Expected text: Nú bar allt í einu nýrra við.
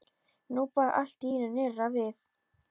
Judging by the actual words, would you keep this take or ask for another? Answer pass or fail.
pass